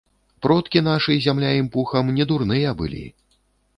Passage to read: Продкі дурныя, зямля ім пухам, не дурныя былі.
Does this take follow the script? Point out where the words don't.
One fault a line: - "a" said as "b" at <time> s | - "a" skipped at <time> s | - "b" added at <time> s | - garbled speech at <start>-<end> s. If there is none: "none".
- "дурныя" said as "нашы" at 0.9 s